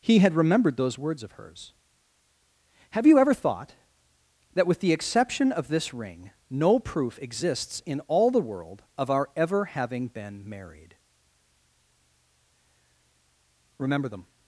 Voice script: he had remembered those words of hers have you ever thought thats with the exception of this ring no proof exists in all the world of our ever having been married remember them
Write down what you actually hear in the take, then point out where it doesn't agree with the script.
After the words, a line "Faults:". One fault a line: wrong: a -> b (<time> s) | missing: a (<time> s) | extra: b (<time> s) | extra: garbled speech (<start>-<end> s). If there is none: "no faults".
he had remembered those words of hers have you ever thought that with the exception of this ring no proof exists in all the world of our ever having been married remember them
Faults:
wrong: thats -> that (4.5 s)